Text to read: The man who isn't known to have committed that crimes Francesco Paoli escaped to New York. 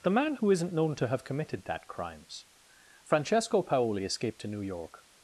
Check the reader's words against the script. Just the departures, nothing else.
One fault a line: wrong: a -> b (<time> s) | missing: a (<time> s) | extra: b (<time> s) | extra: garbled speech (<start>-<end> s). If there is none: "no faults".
no faults